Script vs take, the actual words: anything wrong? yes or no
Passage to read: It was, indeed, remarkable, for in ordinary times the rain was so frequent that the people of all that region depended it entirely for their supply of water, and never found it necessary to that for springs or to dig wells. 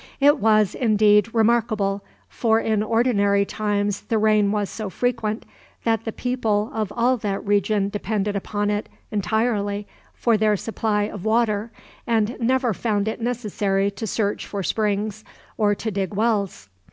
yes